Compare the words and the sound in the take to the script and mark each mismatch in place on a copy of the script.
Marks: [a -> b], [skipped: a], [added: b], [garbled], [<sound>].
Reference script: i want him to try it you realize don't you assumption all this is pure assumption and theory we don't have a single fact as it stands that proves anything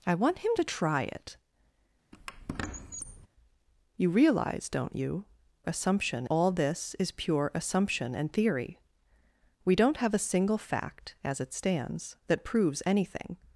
i want him to try it [squeak] you realize don't you assumption all this is pure assumption and theory we don't have a single fact as it stands that proves anything